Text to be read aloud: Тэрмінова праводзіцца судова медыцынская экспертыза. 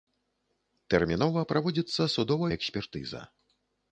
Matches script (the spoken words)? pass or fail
fail